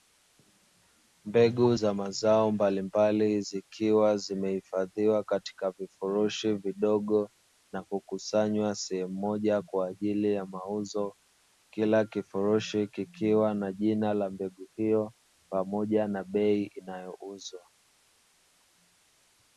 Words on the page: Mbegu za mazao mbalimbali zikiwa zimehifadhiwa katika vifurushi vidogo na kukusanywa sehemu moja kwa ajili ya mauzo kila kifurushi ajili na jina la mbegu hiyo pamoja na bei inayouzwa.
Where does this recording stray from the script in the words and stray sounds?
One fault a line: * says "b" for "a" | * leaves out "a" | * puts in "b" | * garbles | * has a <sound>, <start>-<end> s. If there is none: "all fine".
* says "kikiwa" for "ajili"